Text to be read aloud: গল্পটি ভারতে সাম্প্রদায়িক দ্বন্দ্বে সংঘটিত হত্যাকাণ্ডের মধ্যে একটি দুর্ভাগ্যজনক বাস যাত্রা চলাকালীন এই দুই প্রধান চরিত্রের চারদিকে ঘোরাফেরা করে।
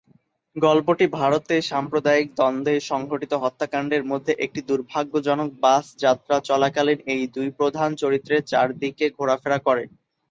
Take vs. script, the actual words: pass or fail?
pass